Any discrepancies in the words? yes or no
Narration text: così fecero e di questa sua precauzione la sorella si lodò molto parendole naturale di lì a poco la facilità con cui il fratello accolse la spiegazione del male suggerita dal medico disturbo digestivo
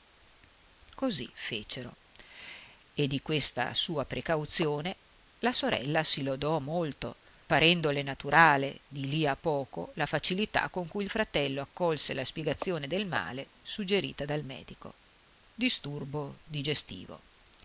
no